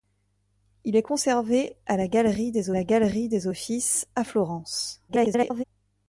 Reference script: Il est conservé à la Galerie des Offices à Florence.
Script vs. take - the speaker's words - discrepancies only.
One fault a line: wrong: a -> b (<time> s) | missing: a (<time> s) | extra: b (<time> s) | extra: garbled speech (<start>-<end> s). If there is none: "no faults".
extra: la Galerie des (2.7 s)
extra: garbled speech (5.1-5.6 s)